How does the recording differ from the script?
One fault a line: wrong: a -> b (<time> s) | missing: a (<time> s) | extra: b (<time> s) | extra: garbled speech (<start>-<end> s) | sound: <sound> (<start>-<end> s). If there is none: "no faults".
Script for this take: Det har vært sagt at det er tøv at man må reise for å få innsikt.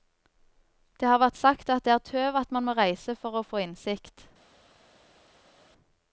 no faults